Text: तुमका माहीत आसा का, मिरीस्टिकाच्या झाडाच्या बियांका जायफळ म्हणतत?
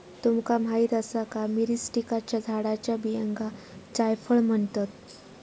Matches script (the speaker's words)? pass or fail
pass